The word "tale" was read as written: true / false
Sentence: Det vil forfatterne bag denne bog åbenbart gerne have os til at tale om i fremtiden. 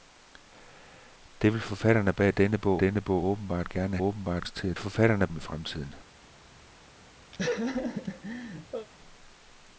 false